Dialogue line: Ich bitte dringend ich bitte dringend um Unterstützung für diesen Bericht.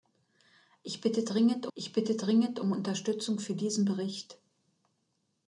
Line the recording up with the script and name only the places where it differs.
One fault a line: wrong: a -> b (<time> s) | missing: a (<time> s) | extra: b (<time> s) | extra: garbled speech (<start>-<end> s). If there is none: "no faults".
no faults